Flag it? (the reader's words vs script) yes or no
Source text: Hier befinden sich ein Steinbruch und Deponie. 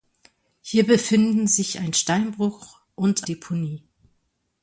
no